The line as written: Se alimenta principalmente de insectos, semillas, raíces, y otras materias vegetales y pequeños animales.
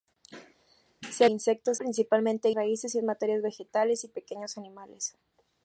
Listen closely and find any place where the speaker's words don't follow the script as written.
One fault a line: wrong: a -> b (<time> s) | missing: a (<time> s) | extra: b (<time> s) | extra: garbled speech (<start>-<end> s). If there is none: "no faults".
wrong: alimenta -> insectos (1.3 s)
missing: insectos semillas (2.5 s)
missing: otras (3.0 s)